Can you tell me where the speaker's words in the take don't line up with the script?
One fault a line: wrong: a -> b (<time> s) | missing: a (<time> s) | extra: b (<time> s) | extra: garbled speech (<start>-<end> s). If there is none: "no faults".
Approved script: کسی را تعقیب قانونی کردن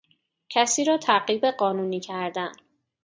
no faults